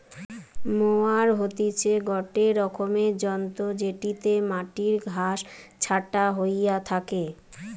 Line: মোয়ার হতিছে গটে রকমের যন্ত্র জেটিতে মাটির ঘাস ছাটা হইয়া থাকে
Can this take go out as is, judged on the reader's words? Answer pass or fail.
pass